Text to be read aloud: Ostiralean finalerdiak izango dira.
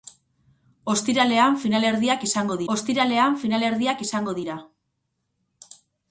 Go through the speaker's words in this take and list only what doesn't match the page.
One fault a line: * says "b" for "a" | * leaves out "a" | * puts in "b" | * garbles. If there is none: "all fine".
* puts in "ostiralean finalerdiak izango"